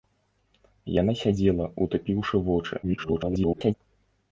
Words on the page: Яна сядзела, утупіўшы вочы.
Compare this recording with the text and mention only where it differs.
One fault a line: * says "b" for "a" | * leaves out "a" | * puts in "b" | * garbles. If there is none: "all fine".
* garbles